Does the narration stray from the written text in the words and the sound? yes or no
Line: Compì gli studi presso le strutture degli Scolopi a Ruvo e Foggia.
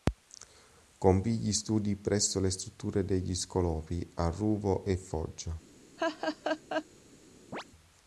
yes